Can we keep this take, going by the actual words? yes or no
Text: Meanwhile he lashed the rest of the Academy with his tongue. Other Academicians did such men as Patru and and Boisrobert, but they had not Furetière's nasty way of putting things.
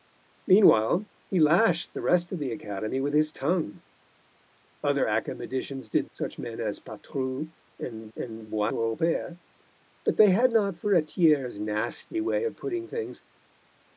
yes